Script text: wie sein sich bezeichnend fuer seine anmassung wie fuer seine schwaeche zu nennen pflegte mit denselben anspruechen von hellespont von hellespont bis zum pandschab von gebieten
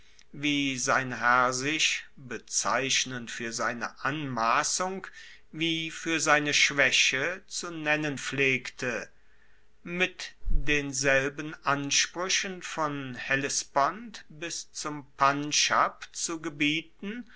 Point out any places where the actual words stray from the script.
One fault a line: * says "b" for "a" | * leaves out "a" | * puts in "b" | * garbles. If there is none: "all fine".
* puts in "herr"
* leaves out "von hellespont"
* says "zu" for "von"